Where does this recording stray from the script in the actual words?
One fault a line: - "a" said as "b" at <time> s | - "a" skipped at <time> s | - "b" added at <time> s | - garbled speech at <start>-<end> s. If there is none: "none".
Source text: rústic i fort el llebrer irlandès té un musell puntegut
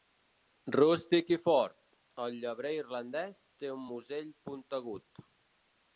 none